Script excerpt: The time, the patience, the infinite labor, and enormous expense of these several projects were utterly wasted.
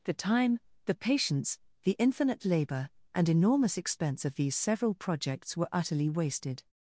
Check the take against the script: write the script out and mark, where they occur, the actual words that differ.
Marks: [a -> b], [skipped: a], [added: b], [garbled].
The time, the patience, the infinite labor, and enormous expense of these several projects were utterly wasted.